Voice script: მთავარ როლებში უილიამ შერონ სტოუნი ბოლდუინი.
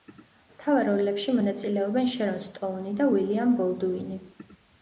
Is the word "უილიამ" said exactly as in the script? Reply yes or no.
no